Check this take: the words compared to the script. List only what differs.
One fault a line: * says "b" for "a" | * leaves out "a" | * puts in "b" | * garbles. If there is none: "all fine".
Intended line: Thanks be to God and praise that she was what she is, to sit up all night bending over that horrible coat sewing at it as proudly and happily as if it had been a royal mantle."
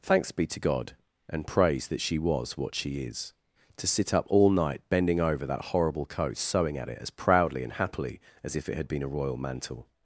all fine